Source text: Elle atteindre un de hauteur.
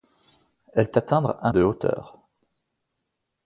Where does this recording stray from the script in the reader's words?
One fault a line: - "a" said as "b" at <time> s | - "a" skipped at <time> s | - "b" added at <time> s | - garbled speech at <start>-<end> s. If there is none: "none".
none